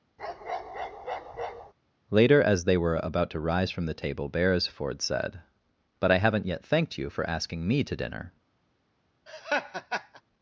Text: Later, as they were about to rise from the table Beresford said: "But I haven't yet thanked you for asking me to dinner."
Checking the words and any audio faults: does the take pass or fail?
fail